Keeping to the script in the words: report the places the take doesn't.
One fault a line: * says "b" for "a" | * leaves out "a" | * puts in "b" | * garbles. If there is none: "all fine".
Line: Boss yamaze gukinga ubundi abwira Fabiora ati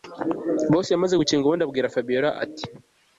all fine